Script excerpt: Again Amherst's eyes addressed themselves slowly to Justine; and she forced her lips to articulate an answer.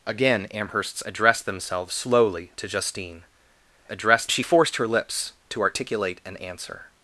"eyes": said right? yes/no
no